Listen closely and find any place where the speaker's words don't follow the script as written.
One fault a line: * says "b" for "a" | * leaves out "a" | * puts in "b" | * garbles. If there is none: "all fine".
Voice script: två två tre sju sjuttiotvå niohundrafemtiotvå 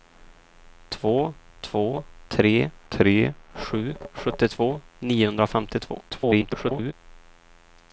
* puts in "tre"
* garbles